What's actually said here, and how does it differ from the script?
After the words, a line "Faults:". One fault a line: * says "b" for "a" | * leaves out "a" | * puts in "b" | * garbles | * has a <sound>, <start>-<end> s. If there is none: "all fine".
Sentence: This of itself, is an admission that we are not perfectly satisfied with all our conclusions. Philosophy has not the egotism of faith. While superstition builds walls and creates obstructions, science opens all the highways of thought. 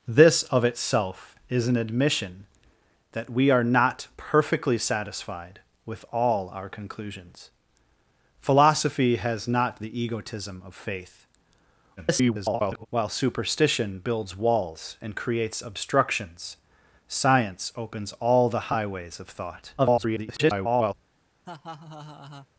This of itself, is an admission that we are not perfectly satisfied with all our conclusions. Philosophy has not the egotism of faith. [garbled] While superstition builds walls and creates obstructions, science opens all the highways of thought. [garbled]
Faults:
* garbles
* garbles
* has a laugh, 21.4-22.5 s